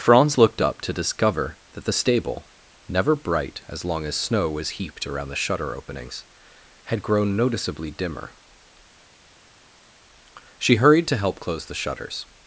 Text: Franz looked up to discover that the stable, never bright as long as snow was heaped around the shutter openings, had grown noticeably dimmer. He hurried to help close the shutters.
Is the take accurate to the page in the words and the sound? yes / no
no